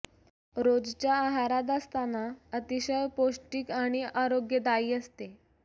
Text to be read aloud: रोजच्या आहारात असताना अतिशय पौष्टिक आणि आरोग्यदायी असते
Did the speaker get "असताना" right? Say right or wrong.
right